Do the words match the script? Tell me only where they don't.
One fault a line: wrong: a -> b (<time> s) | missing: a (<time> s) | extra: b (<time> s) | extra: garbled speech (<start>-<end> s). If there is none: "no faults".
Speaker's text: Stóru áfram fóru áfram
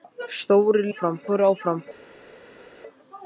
no faults